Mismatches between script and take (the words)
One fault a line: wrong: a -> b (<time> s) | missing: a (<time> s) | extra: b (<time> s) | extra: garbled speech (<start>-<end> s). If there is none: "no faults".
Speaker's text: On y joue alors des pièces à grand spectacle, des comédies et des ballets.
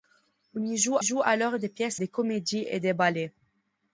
extra: joue (1.0 s)
missing: à grand spectacle (2.0 s)